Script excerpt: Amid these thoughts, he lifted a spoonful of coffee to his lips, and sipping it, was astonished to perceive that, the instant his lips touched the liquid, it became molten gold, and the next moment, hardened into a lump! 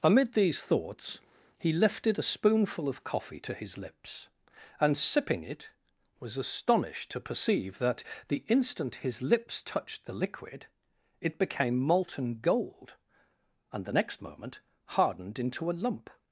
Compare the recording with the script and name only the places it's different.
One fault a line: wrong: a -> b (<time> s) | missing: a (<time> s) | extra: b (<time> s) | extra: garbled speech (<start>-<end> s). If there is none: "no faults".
no faults